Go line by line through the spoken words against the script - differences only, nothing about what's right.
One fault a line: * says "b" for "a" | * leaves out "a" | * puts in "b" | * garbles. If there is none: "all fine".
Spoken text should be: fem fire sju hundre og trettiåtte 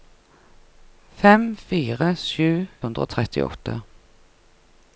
all fine